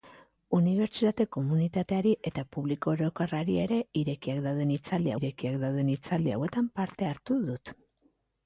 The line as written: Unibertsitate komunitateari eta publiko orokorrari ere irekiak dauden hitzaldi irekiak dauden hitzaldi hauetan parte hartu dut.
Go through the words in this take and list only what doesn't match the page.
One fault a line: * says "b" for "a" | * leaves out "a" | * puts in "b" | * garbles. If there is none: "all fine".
all fine